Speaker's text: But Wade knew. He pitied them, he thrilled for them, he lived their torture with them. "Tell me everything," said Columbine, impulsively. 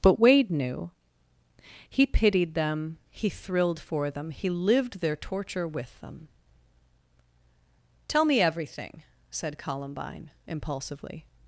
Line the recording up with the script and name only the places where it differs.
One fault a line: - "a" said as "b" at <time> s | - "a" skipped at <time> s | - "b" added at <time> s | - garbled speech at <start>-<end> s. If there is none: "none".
none